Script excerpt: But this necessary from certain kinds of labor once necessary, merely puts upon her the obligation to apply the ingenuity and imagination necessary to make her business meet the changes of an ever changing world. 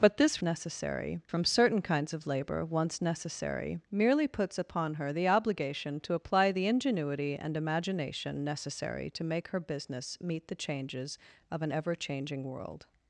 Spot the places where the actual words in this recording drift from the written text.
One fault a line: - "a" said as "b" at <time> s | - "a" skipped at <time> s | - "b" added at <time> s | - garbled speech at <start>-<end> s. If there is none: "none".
none